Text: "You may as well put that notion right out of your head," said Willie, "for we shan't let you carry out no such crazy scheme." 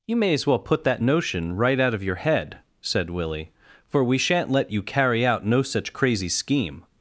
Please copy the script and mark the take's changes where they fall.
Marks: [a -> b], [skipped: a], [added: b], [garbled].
"You may as well put that notion right out of your head," said Willie, "for we shan't let you carry out no such crazy scheme."